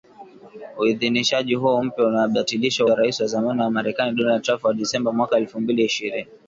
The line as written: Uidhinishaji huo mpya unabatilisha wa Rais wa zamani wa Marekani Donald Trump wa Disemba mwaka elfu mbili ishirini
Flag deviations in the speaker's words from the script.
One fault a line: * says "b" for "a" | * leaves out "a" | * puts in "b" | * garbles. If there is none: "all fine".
all fine